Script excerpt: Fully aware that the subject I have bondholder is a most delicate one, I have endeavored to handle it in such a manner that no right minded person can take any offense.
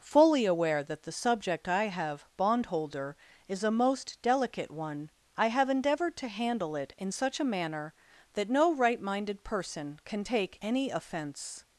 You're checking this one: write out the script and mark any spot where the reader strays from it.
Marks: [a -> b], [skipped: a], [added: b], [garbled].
Fully aware that the subject I have bondholder is a most delicate one, I have endeavored to handle it in such a manner that no right minded person can take any offense.